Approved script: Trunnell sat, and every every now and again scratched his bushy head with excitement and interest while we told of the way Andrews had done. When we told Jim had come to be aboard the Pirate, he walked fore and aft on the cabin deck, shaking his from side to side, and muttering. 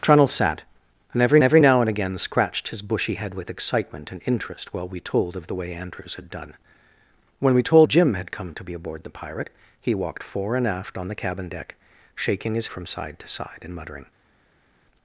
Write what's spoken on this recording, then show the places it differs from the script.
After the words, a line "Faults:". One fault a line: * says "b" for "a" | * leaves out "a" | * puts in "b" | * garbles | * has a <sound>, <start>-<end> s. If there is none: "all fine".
Trunnell sat, and every every now and again scratched his bushy head with excitement and interest while we told of the way Andrews had done. When we told Jim had come to be aboard the Pirate, he walked fore and aft on the cabin deck, shaking his from side to side, and muttering.
Faults:
all fine